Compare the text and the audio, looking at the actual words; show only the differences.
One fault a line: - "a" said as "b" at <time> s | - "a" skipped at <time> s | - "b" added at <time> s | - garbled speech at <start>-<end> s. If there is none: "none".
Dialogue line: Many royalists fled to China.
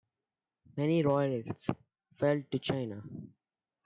none